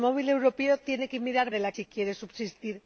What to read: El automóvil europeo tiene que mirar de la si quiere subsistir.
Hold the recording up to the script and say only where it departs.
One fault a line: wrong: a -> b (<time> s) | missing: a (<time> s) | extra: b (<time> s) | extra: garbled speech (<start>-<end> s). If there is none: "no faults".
no faults